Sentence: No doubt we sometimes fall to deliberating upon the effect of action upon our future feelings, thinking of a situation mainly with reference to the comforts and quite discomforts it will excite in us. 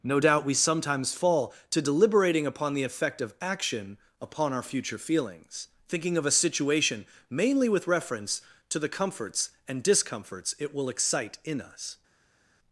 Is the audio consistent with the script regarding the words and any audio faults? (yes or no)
no